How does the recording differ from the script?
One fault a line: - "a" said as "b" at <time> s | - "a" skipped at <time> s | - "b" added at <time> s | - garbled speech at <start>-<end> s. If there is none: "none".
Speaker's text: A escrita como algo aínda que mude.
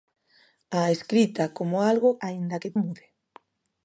none